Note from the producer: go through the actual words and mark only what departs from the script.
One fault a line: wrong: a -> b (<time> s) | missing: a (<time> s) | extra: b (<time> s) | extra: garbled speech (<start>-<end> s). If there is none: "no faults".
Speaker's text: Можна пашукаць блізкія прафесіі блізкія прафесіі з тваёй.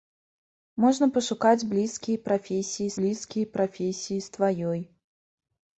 no faults